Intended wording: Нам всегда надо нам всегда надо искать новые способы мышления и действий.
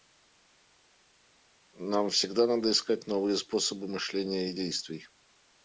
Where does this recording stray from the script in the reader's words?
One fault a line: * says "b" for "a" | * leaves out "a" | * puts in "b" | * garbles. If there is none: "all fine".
* leaves out "нам всегда надо"